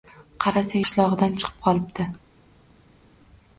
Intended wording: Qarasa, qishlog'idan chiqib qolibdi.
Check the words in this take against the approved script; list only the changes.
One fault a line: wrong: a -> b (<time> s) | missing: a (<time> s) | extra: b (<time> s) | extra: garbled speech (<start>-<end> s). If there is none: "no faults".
no faults